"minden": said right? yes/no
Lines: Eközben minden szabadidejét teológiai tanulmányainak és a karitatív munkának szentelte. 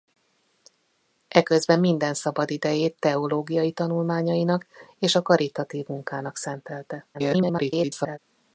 yes